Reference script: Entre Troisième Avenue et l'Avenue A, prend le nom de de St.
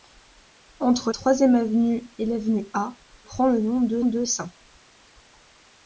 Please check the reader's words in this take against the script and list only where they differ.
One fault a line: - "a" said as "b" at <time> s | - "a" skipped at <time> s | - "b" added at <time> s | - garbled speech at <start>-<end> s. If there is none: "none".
none